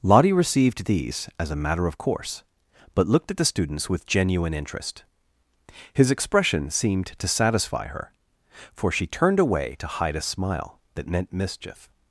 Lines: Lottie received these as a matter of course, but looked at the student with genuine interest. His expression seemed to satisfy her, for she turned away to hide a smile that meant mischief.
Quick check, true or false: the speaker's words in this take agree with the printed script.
false